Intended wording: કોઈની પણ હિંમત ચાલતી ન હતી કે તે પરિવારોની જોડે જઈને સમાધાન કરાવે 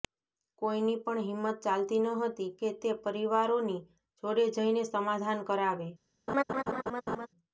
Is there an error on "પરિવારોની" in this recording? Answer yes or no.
no